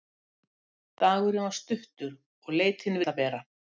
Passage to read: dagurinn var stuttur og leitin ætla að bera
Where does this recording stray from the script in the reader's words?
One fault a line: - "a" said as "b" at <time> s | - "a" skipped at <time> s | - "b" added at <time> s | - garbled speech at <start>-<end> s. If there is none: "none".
none